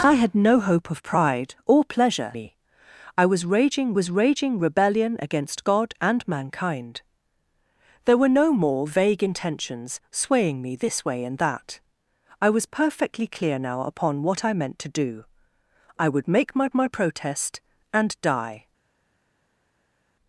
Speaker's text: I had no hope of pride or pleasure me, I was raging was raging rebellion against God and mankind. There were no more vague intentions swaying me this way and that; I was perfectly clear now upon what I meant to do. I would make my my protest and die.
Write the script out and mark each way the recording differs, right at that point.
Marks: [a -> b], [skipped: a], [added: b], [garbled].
I had no hope of pride or pleasure me, I was raging was raging rebellion against God and mankind. There were no more vague intentions swaying me this way and that; I was perfectly clear now upon what I meant to do. I would make my my protest and die.